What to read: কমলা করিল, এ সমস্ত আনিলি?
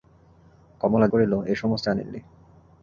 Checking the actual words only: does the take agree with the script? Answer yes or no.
yes